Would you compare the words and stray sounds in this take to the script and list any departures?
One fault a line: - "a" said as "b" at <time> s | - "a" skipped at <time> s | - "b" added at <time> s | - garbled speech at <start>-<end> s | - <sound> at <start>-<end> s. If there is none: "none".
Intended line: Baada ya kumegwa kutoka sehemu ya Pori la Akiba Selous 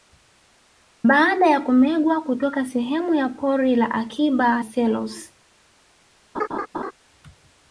- laugh at 6.3-6.9 s